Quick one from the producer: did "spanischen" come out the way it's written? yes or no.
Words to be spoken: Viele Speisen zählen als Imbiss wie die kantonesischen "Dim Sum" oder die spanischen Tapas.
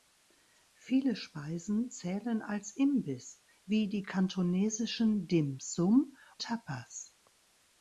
no